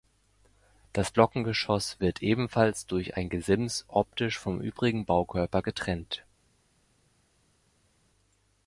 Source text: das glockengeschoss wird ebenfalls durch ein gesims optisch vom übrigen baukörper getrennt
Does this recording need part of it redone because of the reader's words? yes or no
no